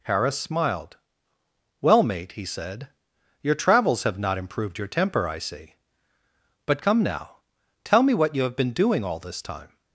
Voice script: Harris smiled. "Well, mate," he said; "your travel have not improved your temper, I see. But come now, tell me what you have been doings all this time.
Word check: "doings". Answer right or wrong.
wrong